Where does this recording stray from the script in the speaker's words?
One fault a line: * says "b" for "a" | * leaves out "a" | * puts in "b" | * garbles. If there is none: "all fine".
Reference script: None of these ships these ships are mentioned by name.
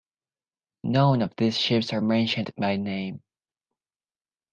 * leaves out "these ships"